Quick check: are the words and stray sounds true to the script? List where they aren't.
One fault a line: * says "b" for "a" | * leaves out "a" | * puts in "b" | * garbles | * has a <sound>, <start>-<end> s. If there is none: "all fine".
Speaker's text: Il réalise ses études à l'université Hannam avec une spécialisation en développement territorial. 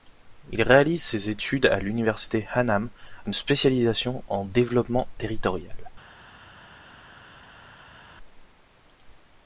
* leaves out "avec"